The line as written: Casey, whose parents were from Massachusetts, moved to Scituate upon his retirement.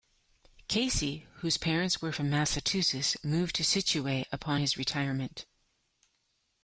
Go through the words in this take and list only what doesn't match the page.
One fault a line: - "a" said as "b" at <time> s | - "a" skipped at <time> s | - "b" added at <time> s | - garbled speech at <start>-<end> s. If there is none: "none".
none